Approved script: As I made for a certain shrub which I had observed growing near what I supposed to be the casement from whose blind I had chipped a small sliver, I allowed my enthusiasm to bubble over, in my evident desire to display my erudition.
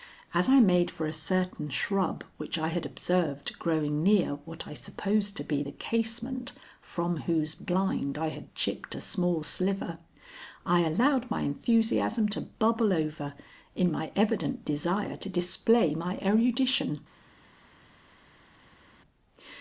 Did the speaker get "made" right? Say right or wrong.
right